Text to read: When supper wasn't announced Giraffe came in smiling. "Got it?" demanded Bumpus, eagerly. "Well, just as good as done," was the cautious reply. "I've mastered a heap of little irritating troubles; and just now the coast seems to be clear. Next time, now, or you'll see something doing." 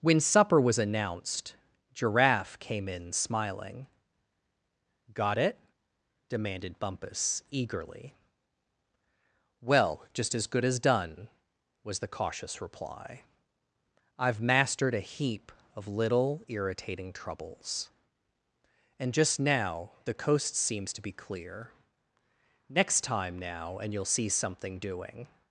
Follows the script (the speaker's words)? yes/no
no